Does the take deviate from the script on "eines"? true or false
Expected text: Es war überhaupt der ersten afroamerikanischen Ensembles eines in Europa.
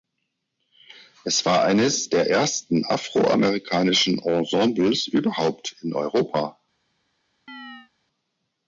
true